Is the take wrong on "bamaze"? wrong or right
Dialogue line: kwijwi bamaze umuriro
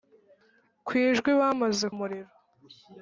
right